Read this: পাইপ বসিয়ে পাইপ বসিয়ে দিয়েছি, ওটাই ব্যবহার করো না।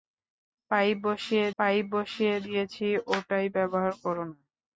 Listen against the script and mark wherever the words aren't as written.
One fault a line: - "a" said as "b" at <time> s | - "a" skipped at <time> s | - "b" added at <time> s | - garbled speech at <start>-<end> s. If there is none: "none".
none